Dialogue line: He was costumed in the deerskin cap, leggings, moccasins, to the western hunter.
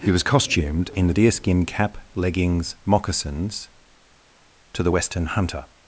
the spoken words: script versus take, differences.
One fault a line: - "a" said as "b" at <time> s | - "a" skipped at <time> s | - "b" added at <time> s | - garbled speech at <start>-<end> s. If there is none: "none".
none